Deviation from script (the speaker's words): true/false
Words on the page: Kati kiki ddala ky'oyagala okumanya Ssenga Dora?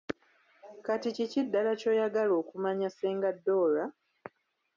false